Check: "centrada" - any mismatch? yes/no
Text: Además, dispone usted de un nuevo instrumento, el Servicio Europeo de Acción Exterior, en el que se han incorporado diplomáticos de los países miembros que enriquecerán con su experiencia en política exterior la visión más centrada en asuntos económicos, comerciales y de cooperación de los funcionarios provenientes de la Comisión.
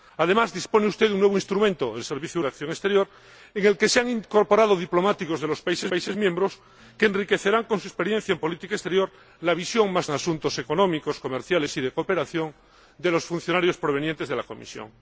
yes